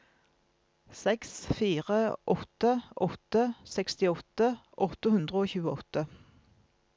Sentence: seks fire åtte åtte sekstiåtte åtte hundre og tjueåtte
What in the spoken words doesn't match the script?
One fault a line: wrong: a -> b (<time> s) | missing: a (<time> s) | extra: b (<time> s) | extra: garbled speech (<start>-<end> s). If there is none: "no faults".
no faults